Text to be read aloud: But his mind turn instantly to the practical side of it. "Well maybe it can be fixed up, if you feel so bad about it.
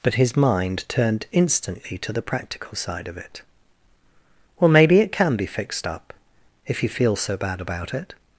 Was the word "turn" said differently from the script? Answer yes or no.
yes